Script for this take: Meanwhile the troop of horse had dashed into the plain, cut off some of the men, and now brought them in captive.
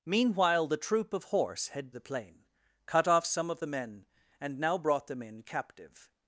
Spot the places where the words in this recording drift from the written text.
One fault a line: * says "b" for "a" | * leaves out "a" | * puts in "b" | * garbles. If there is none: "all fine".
* leaves out "dashed into"